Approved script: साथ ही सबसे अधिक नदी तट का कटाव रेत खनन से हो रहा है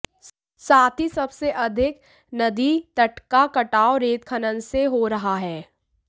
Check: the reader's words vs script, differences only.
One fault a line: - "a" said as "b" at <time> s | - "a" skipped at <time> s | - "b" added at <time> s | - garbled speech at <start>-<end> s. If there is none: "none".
none